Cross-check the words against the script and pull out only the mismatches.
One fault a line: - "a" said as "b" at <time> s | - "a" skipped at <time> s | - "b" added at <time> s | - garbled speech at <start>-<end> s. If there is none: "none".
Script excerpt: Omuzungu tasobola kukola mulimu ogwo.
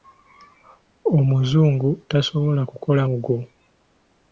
- "mulimu" skipped at 3.0 s